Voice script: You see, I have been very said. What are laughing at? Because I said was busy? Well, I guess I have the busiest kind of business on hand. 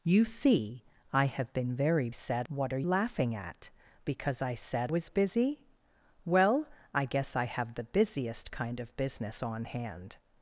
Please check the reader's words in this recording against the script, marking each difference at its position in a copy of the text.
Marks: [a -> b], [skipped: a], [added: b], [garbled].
You see, I have been very said. What are laughing at? Because I said was busy? Well, I guess I have the busiest kind of business on hand.